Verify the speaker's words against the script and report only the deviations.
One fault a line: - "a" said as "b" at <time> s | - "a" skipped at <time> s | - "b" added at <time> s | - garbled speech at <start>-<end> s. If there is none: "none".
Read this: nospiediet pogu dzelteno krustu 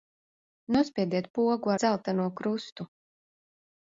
none